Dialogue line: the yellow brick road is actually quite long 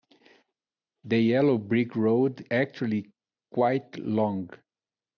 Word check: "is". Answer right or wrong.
wrong